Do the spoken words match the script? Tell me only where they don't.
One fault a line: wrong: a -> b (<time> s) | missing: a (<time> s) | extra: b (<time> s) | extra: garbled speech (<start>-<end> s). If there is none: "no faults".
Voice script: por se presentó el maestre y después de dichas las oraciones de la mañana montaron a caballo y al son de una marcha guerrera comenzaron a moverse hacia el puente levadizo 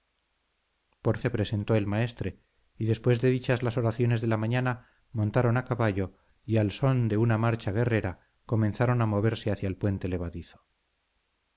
no faults